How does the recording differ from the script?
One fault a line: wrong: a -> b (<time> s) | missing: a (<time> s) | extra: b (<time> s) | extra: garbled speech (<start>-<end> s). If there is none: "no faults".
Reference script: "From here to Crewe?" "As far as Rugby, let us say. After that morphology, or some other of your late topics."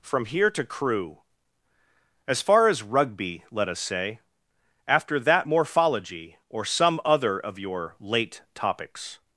no faults